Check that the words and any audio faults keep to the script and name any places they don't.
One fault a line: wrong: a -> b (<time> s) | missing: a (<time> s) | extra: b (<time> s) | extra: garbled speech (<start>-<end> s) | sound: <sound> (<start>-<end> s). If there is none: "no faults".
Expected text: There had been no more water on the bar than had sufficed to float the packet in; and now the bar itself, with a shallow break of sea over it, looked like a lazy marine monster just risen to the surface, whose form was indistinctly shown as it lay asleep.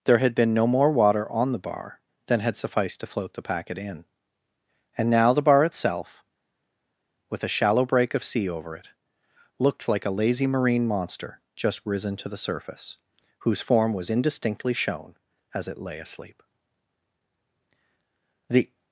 extra: The (18.5 s)